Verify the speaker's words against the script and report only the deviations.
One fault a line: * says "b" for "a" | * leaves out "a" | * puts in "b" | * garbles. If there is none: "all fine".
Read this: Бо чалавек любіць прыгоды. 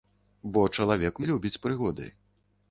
all fine